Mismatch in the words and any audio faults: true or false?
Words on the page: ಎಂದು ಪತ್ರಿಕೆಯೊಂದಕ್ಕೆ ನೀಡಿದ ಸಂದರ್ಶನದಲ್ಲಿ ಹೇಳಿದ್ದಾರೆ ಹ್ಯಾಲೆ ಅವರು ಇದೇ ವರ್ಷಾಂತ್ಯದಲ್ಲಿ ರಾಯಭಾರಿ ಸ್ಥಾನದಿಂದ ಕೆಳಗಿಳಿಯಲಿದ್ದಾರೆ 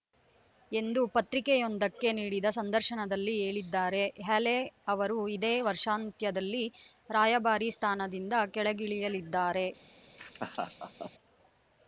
true